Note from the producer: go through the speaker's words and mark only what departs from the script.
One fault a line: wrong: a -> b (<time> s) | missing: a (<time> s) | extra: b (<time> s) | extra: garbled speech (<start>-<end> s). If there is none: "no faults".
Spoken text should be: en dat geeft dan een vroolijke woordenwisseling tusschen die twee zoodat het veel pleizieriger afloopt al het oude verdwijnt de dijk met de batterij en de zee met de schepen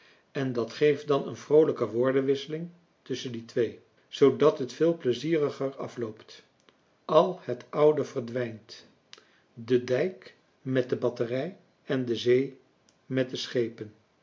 no faults